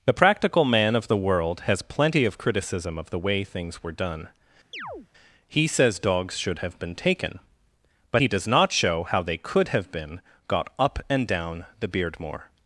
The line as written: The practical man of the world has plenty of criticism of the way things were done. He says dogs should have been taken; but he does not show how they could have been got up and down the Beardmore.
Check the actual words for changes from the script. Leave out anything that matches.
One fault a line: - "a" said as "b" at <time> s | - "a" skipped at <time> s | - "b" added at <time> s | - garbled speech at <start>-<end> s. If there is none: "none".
none